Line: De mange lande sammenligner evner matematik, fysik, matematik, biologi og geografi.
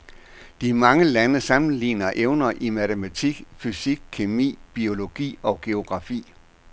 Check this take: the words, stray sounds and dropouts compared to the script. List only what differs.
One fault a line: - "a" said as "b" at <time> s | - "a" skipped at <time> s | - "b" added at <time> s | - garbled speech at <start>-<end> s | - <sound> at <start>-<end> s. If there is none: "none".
- "i" added at 2.6 s
- "matematik" said as "kemi" at 4.1 s